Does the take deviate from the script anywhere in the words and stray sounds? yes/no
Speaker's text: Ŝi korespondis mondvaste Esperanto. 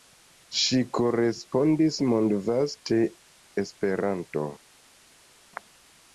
no